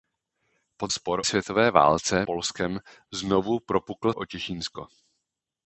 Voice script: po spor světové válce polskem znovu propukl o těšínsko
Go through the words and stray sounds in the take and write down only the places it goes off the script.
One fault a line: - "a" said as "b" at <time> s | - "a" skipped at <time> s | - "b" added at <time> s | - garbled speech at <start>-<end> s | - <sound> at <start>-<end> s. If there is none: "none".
none